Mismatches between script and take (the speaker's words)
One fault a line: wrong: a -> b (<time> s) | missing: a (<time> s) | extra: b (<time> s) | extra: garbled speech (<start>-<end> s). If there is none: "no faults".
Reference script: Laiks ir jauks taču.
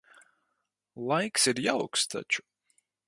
no faults